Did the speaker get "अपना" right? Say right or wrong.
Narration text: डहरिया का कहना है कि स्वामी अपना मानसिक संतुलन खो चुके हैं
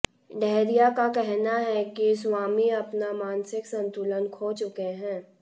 right